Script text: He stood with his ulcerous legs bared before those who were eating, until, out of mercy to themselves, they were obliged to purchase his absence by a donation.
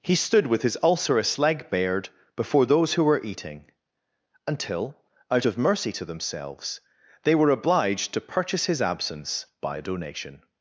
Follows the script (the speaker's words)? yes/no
no